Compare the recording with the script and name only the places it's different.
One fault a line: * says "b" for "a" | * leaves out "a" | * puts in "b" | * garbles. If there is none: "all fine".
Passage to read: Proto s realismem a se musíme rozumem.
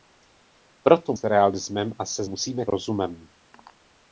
all fine